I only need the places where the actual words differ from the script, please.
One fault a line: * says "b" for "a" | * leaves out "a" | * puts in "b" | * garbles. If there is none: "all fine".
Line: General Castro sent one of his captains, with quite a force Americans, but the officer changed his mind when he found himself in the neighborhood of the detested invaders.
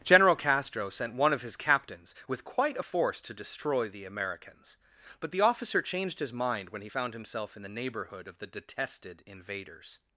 * puts in "to destroy the"